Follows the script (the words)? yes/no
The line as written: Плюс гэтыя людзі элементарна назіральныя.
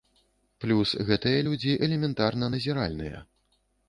yes